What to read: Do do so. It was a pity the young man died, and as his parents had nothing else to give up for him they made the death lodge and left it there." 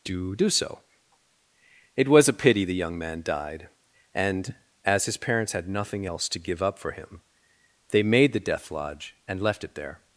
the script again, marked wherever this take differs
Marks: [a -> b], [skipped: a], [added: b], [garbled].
Do do so. It was a pity the young man died, and as his parents had nothing else to give up for him they made the death lodge and left it there."